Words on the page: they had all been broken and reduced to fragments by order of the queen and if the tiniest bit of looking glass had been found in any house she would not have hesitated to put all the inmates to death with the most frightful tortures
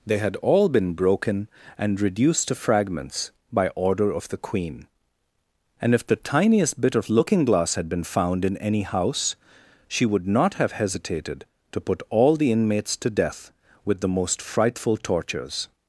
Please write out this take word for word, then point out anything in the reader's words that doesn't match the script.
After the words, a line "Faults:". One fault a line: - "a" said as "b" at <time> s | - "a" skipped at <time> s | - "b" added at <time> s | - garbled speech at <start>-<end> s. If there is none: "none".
they had all been broken and reduced to fragments by order of the queen and if the tiniest bit of looking glass had been found in any house she would not have hesitated to put all the inmates to death with the most frightful tortures
Faults:
none